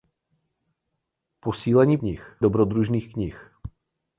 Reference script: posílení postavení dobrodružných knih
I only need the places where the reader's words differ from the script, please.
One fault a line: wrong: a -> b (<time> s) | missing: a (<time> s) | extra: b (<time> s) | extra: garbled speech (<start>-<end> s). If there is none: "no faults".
wrong: postavení -> knih (2.0 s)